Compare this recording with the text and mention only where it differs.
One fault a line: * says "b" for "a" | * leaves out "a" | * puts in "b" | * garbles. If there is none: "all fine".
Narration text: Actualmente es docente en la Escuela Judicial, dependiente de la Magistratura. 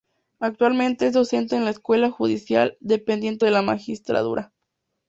all fine